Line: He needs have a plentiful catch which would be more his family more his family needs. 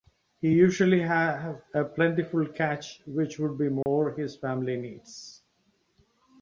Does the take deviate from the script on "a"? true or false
false